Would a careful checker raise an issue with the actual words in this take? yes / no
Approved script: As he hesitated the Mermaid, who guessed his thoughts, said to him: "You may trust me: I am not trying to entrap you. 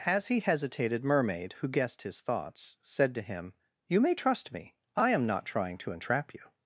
yes